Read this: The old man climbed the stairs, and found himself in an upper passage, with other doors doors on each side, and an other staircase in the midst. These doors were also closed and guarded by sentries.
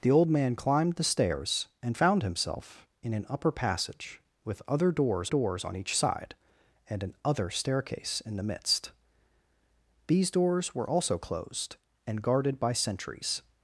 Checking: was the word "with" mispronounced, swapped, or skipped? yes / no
no